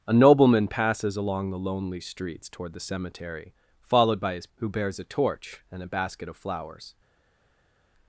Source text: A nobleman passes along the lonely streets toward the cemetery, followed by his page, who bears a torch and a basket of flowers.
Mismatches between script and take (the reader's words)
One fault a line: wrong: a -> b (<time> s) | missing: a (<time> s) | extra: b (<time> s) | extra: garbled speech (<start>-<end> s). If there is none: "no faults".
missing: page (4.5 s)